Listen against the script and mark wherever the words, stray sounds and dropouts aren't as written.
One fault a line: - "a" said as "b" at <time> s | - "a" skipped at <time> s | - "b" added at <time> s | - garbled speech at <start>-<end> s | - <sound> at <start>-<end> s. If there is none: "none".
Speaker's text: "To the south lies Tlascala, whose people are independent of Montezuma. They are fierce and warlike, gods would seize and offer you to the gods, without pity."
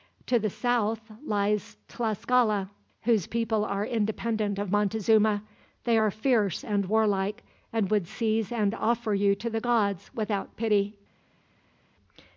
- "gods" said as "and" at 7.7 s